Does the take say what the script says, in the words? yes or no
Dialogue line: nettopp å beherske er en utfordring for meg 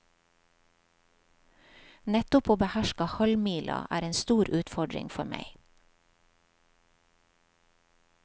no